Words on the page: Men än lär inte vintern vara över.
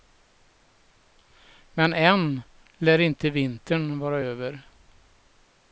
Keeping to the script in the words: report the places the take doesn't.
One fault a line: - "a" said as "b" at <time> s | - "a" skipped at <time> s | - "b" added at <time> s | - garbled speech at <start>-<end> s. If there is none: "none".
none